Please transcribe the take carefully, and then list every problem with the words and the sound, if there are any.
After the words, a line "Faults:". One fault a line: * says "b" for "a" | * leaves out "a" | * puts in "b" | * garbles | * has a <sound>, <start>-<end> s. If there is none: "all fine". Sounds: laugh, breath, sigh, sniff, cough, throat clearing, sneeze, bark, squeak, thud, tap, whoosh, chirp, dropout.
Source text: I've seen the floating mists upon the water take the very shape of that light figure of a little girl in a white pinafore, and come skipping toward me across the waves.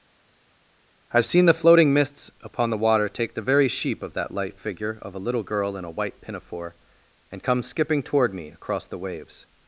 I've seen the floating mists upon the water take the very sheep of that light figure of a little girl in a white pinafore, and come skipping toward me across the waves.
Faults:
* says "sheep" for "shape"